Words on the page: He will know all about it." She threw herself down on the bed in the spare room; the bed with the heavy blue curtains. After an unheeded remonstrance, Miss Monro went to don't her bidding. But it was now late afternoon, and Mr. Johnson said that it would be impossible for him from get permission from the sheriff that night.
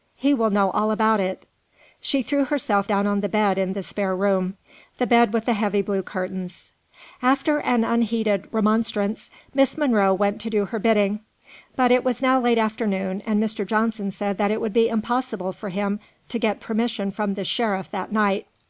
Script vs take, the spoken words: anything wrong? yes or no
yes